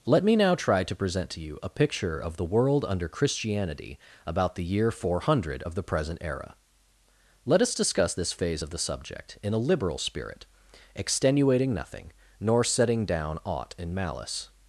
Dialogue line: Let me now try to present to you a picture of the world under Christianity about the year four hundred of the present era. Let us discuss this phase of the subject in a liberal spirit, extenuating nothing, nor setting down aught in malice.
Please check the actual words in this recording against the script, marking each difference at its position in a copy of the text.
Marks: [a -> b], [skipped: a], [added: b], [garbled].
Let me now try to present to you a picture of the world under Christianity about the year four hundred of the present era. Let us discuss this phase of the subject in a liberal spirit, extenuating nothing, nor setting down aught in malice.